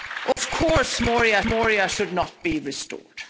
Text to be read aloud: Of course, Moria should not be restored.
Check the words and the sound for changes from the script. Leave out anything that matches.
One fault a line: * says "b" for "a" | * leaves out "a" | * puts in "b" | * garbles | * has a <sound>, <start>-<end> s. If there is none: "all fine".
* has a dropout, 0.3-0.4 s
* puts in "Moria"